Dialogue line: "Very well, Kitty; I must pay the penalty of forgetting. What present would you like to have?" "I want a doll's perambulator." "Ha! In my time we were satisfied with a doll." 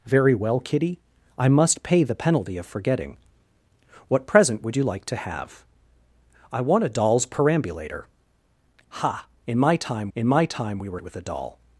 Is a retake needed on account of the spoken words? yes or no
yes